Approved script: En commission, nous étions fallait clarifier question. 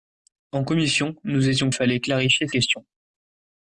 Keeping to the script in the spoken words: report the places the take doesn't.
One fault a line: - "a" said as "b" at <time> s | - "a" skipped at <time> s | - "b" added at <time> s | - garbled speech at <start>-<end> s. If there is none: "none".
none